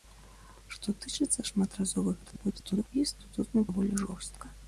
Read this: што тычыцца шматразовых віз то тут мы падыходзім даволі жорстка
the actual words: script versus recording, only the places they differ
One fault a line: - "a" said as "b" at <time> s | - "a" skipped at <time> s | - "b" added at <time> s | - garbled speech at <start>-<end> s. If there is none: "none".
- garbled speech at 2.2-2.9 s
- "падыходзім" skipped at 3.6 s